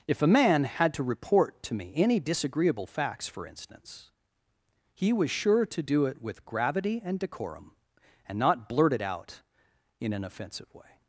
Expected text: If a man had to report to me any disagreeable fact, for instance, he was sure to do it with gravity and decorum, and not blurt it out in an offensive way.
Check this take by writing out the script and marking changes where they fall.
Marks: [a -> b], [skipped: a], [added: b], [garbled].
If a man had to report to me any disagreeable [fact, -> facts] for instance, he was sure to do it with gravity and decorum, and not blurt it out in an offensive way.